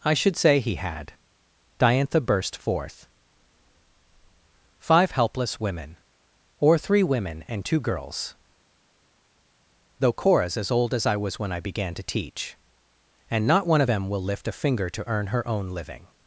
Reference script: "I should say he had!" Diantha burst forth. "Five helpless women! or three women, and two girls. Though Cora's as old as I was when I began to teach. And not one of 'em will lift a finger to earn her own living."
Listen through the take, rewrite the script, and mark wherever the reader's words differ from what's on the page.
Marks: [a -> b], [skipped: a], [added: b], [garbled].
"I should say he had!" Diantha burst forth. "Five helpless women! or three women, and two girls. Though Cora's as old as I was when I began to teach. And not one of 'em will lift a finger to earn her own living."